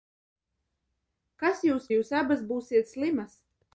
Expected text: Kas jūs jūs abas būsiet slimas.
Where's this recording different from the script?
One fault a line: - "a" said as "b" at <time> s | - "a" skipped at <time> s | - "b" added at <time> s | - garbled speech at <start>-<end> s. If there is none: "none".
none